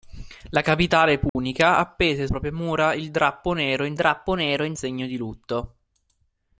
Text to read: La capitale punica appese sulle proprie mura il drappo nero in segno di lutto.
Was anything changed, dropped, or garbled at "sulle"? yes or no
yes